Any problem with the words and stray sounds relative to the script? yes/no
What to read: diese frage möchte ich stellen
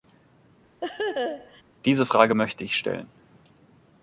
yes